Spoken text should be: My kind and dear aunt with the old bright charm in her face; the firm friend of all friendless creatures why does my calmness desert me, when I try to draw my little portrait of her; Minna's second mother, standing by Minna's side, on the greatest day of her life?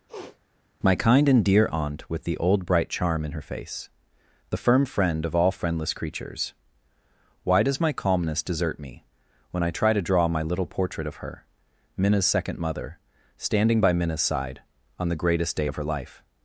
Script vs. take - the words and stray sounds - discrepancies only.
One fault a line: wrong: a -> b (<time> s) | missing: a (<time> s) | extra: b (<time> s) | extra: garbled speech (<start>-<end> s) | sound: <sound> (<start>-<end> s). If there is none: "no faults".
sound: sniff (0.1-0.4 s)